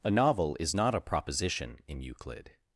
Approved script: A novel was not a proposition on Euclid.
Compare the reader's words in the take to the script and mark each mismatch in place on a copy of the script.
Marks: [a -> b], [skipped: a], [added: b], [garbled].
A novel [was -> is] not a proposition [on -> in] Euclid.